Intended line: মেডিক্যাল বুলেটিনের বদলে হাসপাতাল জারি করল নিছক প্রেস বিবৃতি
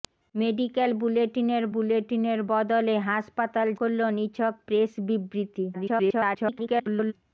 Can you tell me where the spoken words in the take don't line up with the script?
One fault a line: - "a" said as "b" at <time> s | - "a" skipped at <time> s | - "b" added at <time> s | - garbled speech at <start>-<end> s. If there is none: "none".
- "বুলেটিনের" added at 1.7 s
- "জারি" skipped at 3.7 s
- garbled speech at 5.7-7.1 s